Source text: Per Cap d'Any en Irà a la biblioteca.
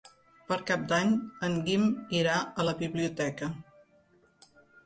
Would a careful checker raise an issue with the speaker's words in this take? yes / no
yes